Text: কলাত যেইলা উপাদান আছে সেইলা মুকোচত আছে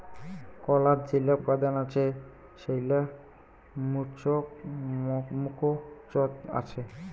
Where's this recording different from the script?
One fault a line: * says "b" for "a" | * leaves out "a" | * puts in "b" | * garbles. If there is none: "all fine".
all fine